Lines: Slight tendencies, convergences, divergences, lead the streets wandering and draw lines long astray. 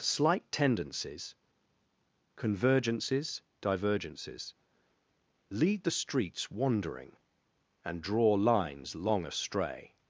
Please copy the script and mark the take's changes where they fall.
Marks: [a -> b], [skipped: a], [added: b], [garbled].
Slight tendencies, convergences, divergences, lead the streets wandering and draw lines long astray.